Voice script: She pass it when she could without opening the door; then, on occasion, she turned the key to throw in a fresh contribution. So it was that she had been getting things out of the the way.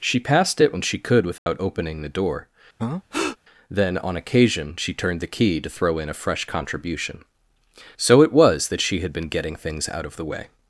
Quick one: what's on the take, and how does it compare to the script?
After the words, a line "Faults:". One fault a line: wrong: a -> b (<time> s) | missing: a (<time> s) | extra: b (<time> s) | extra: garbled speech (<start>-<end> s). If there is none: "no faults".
She passed it when she could without opening the door; then, on occasion, she turned the key to throw in a fresh contribution. So it was that she had been getting things out of the way.
Faults:
wrong: pass -> passed (0.2 s)
missing: the (10.2 s)